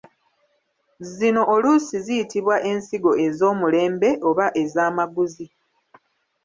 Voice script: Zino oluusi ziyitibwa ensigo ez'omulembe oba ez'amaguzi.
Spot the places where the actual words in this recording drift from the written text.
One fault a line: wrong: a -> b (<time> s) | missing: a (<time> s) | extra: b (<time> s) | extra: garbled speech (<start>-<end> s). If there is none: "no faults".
no faults